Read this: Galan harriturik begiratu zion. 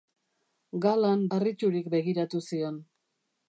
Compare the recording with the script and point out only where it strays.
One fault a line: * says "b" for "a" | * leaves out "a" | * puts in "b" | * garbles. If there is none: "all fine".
all fine